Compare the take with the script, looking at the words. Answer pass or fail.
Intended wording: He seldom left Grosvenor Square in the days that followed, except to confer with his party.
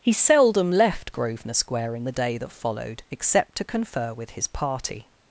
fail